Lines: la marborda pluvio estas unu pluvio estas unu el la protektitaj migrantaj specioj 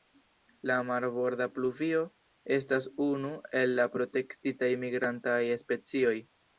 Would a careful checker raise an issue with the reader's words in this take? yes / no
yes